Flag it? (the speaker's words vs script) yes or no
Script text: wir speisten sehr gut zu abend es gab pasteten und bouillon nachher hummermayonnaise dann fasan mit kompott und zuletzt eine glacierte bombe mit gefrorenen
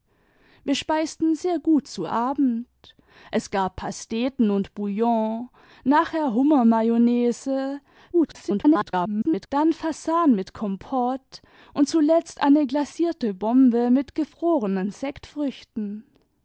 yes